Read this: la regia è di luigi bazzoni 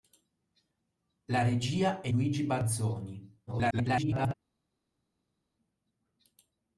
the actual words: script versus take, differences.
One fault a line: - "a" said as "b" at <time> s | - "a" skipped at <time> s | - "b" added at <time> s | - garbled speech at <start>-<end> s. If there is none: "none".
- "di" skipped at 2.1 s
- garbled speech at 3.5-4.3 s